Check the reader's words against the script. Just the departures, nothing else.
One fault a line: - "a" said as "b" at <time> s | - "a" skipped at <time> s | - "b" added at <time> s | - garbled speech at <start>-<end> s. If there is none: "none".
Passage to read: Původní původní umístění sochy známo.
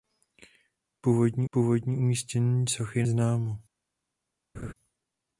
none